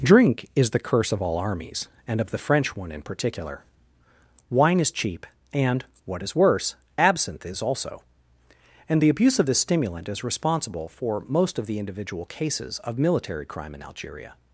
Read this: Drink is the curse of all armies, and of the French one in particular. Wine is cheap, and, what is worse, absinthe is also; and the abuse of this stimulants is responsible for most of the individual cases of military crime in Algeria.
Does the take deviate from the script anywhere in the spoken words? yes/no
yes